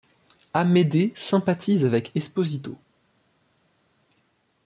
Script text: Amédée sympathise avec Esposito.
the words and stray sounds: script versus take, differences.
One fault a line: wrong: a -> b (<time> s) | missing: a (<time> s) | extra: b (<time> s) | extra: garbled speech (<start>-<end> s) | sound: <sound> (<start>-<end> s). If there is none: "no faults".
no faults